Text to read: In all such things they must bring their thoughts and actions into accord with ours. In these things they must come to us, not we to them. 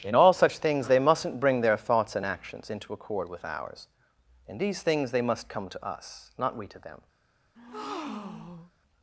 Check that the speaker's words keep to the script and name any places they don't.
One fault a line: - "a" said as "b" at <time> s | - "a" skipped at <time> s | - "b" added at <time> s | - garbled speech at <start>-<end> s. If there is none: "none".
- "must" said as "mustn't" at 1.0 s